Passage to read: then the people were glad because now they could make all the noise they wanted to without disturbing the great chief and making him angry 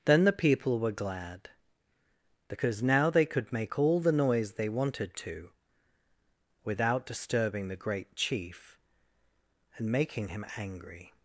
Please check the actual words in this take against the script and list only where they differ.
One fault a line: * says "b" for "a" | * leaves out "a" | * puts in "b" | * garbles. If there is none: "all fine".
all fine